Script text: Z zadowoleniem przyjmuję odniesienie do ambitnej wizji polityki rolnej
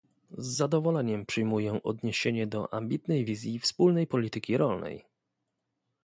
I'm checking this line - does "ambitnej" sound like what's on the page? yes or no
yes